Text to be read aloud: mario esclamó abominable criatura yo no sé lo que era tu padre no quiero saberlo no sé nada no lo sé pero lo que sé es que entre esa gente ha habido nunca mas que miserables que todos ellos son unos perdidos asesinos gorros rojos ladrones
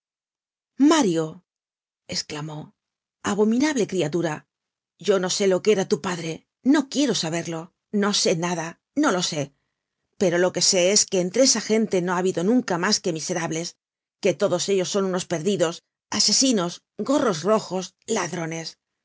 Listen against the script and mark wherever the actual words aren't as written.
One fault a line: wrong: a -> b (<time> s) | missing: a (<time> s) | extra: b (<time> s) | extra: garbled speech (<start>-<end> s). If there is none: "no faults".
extra: no (12.0 s)